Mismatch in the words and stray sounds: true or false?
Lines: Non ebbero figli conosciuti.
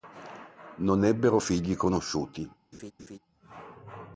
true